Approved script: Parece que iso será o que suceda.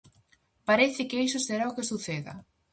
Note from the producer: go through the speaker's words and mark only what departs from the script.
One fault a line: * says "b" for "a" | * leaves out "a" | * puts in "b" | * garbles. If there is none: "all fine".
all fine